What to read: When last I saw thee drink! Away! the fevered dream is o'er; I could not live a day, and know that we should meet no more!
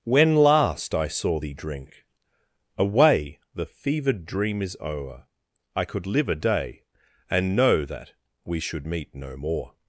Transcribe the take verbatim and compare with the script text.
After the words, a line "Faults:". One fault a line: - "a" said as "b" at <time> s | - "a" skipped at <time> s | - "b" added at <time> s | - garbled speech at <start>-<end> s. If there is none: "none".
When last I saw thee drink! Away! the fevered dream is o'er; I could live a day, and know that we should meet no more!
Faults:
- "not" skipped at 6.1 s